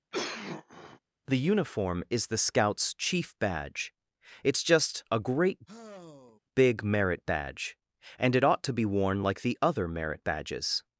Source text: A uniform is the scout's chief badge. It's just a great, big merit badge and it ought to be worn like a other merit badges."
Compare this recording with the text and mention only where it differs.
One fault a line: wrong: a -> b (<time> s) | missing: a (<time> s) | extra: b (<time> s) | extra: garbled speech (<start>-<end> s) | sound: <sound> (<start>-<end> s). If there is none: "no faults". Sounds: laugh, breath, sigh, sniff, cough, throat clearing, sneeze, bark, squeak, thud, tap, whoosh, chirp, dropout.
sound: cough (0.1-1.0 s)
wrong: A -> The (1.3 s)
sound: sigh (5.7-6.4 s)
wrong: a -> the (9.4 s)